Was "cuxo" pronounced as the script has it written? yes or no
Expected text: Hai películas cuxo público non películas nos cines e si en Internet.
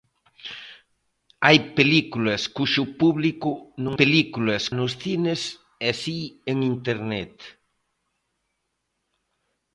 yes